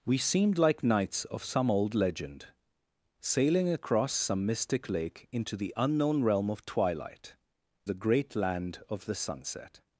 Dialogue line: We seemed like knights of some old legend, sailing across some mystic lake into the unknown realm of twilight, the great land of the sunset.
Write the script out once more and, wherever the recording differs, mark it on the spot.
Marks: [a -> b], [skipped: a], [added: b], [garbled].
We seemed like knights of some old legend, sailing across some mystic lake into the unknown realm of twilight, the great land of the sunset.